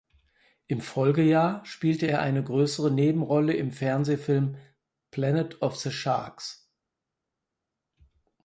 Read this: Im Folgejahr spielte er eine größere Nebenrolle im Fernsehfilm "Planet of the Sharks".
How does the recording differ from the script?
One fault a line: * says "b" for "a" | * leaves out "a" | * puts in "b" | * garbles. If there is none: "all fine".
all fine